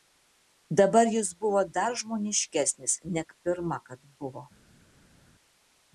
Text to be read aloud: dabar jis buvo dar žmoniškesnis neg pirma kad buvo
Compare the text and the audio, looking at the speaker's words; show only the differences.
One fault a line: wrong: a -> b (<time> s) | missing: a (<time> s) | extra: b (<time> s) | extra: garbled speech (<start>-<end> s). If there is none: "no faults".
no faults